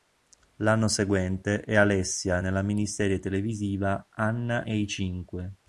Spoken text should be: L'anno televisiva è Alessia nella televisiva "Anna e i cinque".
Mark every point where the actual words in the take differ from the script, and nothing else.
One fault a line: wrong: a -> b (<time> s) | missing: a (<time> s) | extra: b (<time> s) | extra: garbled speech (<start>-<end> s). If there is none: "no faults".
wrong: televisiva -> seguente (0.9 s)
extra: miniserie (2.6 s)